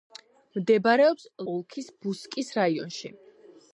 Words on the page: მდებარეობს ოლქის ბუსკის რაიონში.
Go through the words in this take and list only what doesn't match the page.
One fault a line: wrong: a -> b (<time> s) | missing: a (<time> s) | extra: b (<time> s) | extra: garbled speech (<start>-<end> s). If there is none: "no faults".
no faults